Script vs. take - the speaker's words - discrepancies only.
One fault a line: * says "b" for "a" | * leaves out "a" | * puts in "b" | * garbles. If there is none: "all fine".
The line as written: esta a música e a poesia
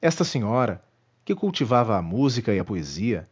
* puts in "senhora que cultivava"